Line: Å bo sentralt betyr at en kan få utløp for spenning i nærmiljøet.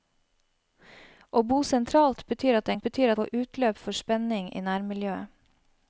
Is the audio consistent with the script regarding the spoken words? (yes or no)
no